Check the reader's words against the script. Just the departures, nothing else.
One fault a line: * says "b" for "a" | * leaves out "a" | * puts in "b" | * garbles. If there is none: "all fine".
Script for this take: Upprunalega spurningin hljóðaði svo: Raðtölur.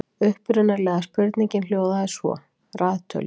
all fine